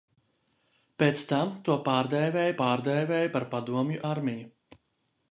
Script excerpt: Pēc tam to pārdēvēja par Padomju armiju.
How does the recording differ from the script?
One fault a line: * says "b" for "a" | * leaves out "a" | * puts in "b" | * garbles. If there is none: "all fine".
* puts in "pārdēvēja"